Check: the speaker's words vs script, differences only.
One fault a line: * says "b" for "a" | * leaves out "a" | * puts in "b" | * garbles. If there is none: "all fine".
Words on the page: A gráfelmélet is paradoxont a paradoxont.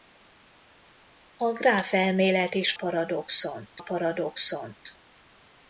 all fine